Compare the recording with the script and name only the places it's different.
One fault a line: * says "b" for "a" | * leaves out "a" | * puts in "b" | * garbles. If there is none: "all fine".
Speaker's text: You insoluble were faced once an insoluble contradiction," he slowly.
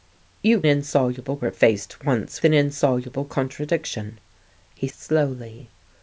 all fine